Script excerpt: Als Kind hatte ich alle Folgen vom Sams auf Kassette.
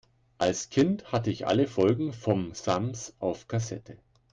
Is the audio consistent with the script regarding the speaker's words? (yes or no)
yes